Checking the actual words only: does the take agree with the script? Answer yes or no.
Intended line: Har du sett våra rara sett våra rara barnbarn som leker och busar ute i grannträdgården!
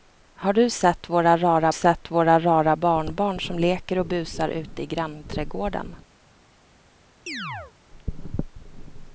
yes